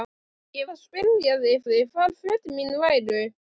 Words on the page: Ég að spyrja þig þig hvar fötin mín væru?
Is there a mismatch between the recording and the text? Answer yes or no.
no